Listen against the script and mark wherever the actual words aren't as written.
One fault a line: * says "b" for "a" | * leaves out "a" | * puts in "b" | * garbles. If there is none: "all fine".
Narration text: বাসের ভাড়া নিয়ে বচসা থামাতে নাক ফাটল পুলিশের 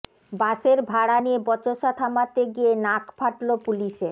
* puts in "গিয়ে"